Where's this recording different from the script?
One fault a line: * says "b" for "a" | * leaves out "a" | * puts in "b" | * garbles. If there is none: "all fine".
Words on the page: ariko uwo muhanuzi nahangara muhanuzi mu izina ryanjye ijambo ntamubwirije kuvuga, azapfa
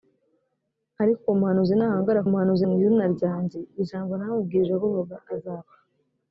all fine